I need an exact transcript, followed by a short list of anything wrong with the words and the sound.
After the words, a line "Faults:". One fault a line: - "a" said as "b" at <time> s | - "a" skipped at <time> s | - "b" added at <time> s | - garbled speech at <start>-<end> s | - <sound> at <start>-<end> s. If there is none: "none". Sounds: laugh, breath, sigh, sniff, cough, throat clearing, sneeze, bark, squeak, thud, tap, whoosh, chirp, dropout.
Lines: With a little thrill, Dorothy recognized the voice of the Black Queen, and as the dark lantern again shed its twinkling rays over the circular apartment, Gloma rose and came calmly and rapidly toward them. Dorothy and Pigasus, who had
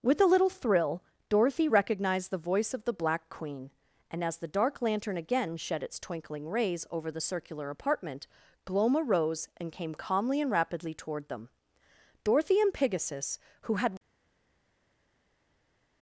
With a little thrill, Dorothy recognized the voice of the Black Queen, and as the dark lantern again shed its twinkling rays over the circular apartment, Gloma rose and came calmly and rapidly toward them. Dorothy and Pigasus, who had
Faults:
none